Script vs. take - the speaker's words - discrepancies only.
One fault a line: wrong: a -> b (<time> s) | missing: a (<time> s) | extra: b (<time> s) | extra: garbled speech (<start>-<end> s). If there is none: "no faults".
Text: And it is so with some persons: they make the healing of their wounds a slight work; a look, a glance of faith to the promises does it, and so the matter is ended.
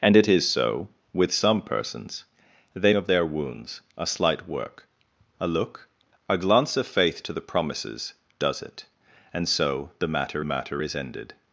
missing: make the healing (3.0 s)
extra: matter (10.4 s)